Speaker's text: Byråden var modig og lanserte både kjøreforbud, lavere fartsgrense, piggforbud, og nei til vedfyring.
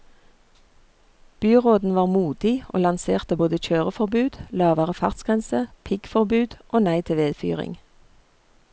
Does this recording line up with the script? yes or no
yes